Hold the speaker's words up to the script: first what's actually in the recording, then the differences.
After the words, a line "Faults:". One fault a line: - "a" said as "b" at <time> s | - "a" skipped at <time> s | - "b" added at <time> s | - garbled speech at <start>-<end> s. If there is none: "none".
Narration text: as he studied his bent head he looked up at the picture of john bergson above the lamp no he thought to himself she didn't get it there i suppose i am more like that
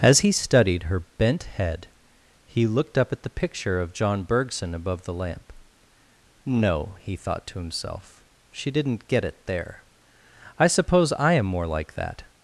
as he studied her bent head he looked up at the picture of john bergson above the lamp no he thought to himself she didn't get it there i suppose i am more like that
Faults:
- "his" said as "her" at 0.8 s